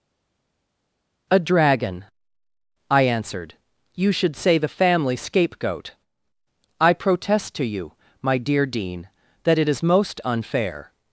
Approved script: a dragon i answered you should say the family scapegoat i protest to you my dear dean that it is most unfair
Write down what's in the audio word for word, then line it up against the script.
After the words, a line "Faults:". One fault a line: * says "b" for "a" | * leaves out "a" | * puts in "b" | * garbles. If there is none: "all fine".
a dragon i answered you should say the family scapegoat i protest to you my dear dean that it is most unfair
Faults:
all fine